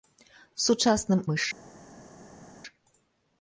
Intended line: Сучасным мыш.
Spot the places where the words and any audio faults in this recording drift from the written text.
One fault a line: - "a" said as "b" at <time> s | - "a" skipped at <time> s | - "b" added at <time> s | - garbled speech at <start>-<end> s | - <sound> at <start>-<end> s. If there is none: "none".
none